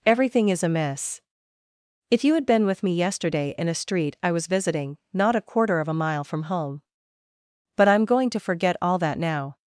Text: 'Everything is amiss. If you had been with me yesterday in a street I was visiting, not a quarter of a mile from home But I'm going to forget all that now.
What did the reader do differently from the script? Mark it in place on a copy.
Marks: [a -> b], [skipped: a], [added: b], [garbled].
'Everything is amiss. If you had been with me yesterday in a street I was visiting, not a quarter of a mile from home But I'm going to forget all that now.